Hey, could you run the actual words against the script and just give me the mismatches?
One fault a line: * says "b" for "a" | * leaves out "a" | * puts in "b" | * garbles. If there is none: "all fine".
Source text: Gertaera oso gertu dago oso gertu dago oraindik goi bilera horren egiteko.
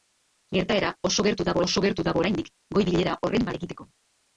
all fine